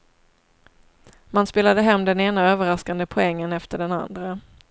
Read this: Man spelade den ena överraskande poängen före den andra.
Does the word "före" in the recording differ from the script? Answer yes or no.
yes